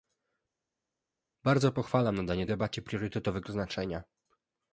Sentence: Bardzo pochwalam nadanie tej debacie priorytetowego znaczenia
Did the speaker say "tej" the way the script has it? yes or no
no